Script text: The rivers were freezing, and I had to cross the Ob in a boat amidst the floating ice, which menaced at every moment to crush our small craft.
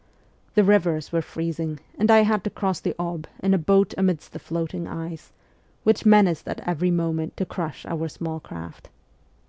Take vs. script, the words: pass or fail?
pass